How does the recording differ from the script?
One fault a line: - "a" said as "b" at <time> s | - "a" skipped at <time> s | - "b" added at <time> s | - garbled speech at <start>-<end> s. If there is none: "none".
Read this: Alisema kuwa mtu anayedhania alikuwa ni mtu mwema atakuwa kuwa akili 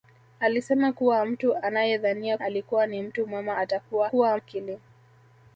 none